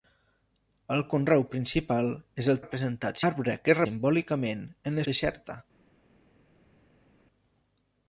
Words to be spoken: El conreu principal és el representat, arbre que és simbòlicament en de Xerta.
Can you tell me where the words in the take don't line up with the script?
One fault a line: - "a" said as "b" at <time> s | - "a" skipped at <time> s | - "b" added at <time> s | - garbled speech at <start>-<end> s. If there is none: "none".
none